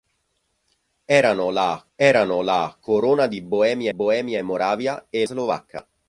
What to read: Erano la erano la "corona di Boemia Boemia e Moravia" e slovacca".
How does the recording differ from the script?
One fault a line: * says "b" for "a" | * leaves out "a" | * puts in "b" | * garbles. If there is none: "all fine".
all fine